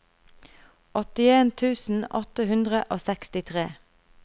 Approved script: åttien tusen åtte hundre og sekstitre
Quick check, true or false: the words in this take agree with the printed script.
true